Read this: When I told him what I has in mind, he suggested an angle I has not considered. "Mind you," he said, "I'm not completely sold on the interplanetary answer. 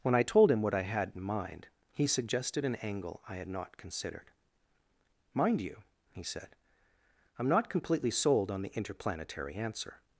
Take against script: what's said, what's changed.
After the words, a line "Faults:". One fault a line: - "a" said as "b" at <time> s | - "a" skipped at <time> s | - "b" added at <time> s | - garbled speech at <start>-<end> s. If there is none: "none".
When I told him what I had in mind, he suggested an angle I had not considered. "Mind you," he said, "I'm not completely sold on the interplanetary answer.
Faults:
- "has" said as "had" at 0.8 s
- "has" said as "had" at 3.4 s